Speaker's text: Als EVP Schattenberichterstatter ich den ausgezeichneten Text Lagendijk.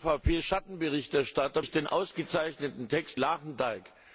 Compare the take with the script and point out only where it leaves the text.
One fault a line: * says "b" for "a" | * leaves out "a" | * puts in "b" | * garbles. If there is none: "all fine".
all fine